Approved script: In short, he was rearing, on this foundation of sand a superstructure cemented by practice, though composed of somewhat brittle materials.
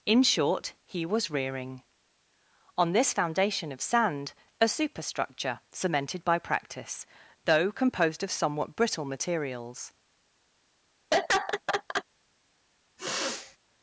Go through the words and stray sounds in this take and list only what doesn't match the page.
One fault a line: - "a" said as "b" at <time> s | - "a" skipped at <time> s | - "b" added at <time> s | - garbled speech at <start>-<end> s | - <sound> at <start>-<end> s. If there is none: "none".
- laugh at 11.1-12.0 s
- sniff at 13.0-13.6 s